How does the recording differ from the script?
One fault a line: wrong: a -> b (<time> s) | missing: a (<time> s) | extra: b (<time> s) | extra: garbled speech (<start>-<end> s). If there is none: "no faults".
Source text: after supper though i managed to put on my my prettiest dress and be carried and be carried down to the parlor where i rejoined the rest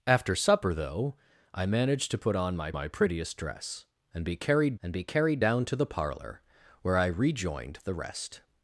no faults